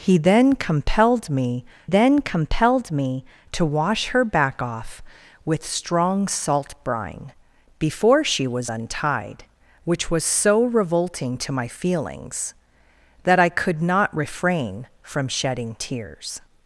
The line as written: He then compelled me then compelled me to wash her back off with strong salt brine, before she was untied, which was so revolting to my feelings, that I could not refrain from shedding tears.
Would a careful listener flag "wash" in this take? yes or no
no